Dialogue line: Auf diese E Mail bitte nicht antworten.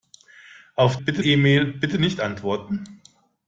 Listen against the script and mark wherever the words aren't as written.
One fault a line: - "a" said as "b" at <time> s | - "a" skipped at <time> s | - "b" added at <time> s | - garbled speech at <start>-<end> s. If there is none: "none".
- "diese" said as "bitte" at 1.0 s